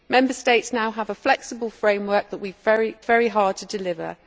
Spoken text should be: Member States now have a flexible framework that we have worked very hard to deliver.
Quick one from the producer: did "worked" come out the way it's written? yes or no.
no